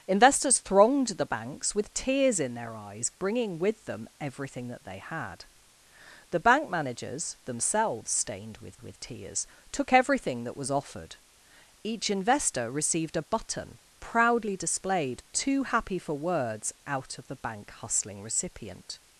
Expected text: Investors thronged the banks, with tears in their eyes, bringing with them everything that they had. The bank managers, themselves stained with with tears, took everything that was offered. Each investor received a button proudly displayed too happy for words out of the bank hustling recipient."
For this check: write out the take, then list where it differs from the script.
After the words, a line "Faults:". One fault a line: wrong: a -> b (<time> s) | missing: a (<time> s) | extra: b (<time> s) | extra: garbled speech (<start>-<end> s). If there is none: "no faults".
Investors thronged the banks, with tears in their eyes, bringing with them everything that they had. The bank managers, themselves stained with with tears, took everything that was offered. Each investor received a button proudly displayed too happy for words out of the bank hustling recipient."
Faults:
no faults